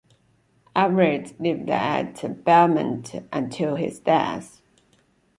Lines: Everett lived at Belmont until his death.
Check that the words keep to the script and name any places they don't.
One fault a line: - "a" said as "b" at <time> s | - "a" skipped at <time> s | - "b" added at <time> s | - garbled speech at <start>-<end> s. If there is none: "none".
none